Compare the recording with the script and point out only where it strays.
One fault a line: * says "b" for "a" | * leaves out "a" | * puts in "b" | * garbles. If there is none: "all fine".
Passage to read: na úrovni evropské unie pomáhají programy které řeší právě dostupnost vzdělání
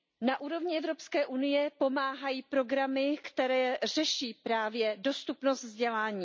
all fine